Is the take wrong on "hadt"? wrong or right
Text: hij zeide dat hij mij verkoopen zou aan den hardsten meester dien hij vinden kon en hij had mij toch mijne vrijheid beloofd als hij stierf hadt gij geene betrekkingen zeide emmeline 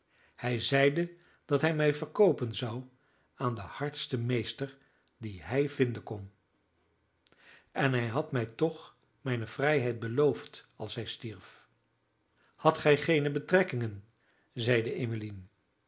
right